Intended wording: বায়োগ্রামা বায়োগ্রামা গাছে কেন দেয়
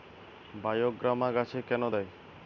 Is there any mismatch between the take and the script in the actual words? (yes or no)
yes